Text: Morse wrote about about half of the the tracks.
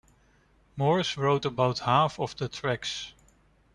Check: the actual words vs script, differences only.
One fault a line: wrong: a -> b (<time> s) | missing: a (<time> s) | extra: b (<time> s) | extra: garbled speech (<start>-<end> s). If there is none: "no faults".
missing: about (1.8 s)
missing: the (2.5 s)